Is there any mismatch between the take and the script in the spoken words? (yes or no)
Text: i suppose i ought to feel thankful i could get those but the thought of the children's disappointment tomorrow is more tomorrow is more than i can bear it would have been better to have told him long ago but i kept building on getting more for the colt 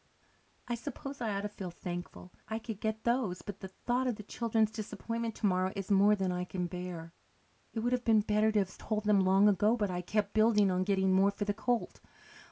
yes